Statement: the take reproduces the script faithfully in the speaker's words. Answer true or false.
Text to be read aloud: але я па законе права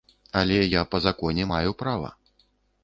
false